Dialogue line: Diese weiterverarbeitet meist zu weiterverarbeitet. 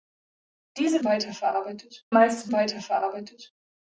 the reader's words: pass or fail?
pass